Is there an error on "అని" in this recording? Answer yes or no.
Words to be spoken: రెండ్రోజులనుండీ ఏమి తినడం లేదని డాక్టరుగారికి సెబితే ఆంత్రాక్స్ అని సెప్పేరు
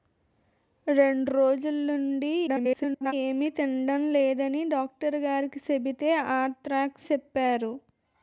yes